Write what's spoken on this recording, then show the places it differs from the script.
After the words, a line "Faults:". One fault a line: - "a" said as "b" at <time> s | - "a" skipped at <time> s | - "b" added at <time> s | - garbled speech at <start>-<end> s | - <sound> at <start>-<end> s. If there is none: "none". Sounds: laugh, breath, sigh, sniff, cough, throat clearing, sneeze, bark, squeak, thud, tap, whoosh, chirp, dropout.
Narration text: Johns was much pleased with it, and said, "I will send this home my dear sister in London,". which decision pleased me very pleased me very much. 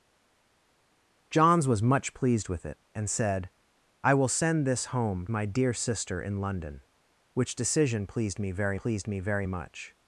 Johns was much pleased with it, and said, "I will send this home my dear sister in London,". which decision pleased me very pleased me very much.
Faults:
none